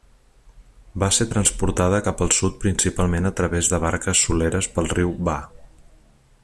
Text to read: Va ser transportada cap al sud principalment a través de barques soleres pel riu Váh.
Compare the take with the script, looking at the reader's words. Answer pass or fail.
pass